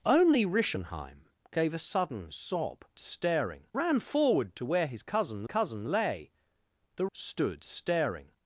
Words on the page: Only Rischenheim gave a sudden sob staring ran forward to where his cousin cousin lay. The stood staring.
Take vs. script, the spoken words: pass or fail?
pass